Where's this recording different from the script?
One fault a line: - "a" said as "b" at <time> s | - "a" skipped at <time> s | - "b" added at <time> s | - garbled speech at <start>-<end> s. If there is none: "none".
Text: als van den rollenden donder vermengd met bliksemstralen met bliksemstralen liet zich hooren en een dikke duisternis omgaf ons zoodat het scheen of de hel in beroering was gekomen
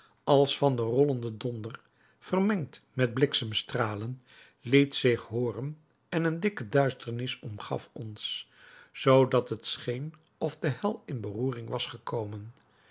- "met bliksemstralen" skipped at 4.2 s